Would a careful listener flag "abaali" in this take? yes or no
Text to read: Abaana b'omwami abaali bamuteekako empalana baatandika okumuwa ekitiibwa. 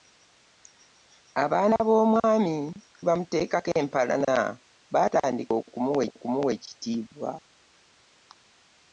yes